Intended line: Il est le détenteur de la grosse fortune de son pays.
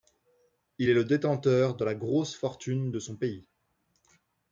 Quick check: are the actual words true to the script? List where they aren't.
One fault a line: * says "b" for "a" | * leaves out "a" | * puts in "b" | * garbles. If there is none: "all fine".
all fine